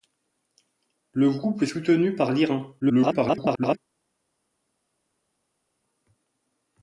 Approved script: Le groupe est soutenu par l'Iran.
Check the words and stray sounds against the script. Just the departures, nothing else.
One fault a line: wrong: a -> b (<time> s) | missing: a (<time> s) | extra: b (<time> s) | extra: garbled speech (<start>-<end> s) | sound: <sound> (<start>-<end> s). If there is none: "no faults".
extra: garbled speech (2.8-3.8 s)